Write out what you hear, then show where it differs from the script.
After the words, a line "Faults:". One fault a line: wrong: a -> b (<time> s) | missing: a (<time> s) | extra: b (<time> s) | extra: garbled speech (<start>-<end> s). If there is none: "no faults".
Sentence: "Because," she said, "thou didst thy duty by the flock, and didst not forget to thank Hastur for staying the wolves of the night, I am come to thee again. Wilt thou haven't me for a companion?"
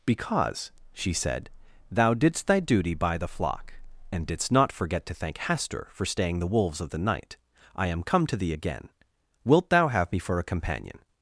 "Because," she said, "thou didst thy duty by the flock, and didst not forget to thank Hastur for staying the wolves of the night, I am come to thee again. Wilt thou have me for a companion?"
Faults:
wrong: haven't -> have (9.9 s)